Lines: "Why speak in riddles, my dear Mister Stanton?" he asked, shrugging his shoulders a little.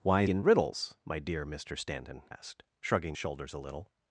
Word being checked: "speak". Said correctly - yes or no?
no